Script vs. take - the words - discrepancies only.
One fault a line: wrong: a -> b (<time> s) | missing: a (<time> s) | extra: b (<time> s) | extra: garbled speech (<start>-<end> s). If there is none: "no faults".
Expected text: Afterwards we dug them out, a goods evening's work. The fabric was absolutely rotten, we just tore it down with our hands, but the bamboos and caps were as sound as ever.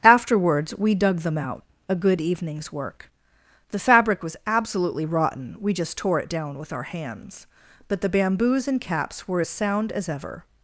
wrong: goods -> good (1.9 s)